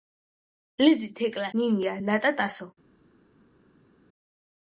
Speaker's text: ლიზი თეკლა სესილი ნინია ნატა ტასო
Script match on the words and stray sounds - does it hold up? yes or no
no